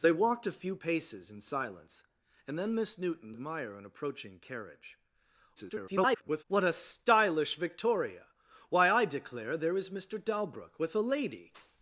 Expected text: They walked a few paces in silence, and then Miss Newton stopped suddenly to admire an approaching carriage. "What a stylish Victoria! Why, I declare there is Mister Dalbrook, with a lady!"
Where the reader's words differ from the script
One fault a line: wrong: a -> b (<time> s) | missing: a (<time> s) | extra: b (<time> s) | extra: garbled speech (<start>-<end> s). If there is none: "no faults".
missing: stopped suddenly to (3.4 s)
extra: garbled speech (5.6-6.4 s)